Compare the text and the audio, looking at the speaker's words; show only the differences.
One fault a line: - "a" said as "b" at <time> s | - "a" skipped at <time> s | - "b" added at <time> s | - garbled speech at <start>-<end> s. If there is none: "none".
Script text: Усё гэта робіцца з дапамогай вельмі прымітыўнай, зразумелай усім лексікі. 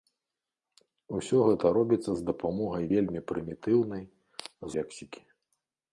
- "зразумелай усім" skipped at 4.0 s